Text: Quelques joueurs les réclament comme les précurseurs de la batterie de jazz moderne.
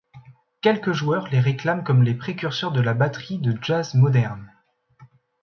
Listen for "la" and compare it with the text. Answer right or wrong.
right